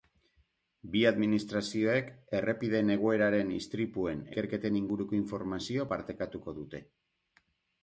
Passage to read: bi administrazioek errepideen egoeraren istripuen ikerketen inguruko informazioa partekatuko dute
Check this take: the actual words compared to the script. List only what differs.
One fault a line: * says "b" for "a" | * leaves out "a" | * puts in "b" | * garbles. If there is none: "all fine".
all fine